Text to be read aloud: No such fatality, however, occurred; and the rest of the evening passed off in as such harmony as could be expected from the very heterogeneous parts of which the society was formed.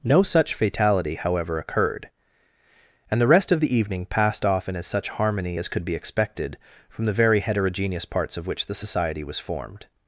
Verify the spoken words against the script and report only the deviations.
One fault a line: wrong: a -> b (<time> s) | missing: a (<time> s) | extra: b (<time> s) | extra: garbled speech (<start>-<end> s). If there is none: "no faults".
no faults